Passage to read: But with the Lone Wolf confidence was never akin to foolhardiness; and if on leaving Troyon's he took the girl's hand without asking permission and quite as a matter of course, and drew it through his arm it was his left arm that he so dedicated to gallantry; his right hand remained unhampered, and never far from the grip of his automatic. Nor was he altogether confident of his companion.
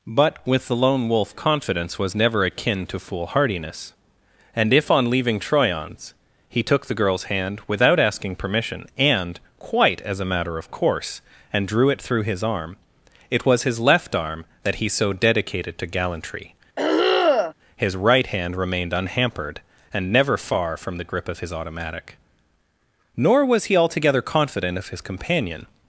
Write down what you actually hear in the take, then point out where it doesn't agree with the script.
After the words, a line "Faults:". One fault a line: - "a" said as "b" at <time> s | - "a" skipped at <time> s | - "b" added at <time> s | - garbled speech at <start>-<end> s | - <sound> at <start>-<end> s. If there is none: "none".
But with the Lone Wolf confidence was never akin to foolhardiness; and if on leaving Troyon's he took the girl's hand without asking permission and quite as a matter of course, and drew it through his arm it was his left arm that he so dedicated to gallantry; his right hand remained unhampered, and never far from the grip of his automatic. Nor was he altogether confident of his companion.
Faults:
- throat clearing at 16.8-17.5 s